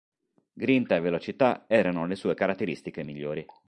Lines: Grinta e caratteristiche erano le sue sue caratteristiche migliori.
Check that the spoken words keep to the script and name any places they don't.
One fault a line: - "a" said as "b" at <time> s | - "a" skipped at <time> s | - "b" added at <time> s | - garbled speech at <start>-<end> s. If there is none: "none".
- "caratteristiche" said as "velocità" at 1.0 s
- "sue" skipped at 2.3 s